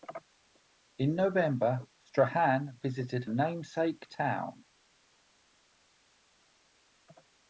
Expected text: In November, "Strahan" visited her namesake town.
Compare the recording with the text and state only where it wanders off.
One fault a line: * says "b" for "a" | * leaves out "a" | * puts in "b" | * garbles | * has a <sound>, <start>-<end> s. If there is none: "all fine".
* leaves out "her"